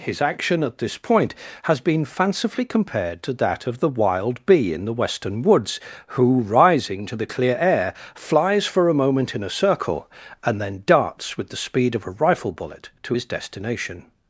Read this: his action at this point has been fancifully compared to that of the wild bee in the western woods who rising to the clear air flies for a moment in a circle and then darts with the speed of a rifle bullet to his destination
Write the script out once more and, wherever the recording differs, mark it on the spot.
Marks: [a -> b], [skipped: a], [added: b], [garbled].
his action at this point has been fancifully compared to that of the wild bee in the western woods who rising to the clear air flies for a moment in a circle and then darts with the speed of a rifle bullet to his destination